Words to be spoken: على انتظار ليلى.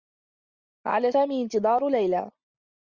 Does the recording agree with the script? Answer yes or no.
no